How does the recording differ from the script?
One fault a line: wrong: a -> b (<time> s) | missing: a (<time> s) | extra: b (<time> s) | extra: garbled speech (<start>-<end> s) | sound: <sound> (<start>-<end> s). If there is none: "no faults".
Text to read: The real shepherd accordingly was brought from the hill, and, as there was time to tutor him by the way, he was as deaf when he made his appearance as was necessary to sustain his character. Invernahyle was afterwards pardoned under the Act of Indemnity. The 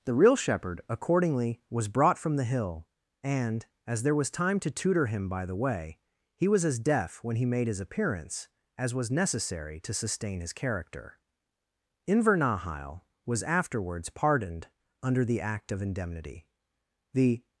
no faults